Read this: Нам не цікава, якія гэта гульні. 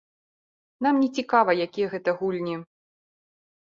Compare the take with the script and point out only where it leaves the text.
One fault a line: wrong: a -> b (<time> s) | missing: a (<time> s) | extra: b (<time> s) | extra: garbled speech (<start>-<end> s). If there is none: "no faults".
no faults